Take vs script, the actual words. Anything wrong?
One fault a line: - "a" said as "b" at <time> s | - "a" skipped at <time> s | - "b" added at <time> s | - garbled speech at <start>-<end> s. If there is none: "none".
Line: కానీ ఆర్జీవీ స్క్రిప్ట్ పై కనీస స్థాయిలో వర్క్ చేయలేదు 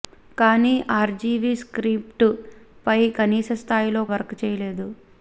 none